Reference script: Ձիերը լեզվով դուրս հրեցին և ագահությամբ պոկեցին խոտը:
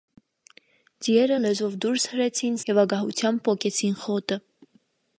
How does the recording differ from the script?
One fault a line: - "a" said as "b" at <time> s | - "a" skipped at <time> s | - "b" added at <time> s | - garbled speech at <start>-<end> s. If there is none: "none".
none